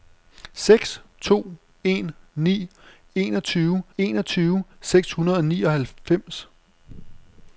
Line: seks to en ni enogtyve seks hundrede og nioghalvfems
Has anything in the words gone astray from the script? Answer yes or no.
yes